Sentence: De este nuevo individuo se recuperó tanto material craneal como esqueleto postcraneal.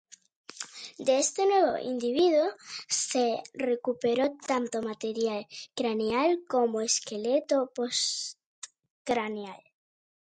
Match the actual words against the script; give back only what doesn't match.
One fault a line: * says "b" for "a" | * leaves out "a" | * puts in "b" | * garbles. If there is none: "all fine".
all fine